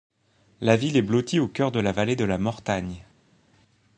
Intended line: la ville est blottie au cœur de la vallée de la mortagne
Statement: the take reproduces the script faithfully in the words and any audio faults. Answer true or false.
true